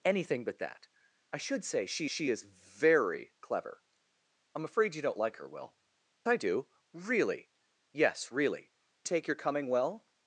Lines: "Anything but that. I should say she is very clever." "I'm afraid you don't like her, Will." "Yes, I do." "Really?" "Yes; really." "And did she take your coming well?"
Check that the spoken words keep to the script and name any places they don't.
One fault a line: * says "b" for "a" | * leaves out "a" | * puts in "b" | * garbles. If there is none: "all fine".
* puts in "she"
* leaves out "Yes"
* leaves out "And did she"